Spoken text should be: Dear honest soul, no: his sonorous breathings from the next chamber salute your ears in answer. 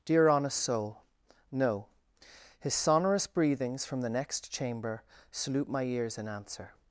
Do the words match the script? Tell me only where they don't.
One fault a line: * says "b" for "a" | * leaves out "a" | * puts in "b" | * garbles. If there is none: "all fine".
* says "my" for "your"